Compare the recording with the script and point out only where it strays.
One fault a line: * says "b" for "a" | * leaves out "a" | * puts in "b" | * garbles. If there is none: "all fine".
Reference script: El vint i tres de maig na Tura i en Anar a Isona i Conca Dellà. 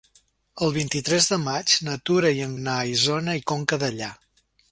all fine